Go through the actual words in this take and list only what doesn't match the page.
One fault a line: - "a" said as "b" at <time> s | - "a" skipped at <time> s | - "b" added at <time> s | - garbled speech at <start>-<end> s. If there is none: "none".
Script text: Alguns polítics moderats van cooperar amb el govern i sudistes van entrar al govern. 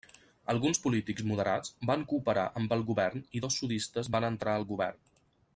- "dos" added at 3.4 s